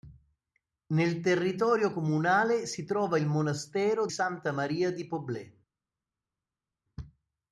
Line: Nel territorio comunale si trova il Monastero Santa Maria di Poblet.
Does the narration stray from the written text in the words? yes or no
no